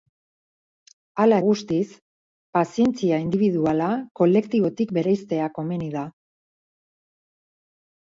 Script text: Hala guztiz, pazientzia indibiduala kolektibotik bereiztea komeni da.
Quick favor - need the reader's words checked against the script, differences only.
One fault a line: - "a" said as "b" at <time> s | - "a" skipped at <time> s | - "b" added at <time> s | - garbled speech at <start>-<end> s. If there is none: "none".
none